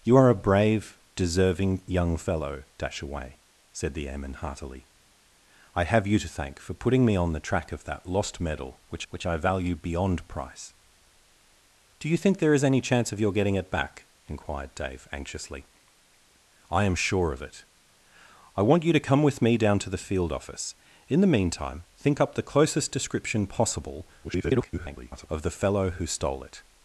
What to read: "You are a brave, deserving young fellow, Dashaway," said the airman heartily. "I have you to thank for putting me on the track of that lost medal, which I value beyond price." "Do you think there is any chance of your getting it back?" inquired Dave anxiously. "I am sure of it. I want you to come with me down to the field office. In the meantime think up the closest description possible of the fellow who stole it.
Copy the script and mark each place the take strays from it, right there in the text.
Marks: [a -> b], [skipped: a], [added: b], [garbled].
"You are a brave, deserving young fellow, Dashaway," said the airman heartily. "I have you to thank for putting me on the track of that lost medal, which [added: which] I value beyond price." "Do you think there is any chance of your getting it back?" inquired Dave anxiously. "I am sure of it. I want you to come with me down to the field office. In the meantime think up the closest description possible [garbled] of the fellow who stole it.